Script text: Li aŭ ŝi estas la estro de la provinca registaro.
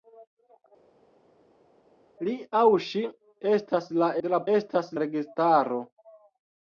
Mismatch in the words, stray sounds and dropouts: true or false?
true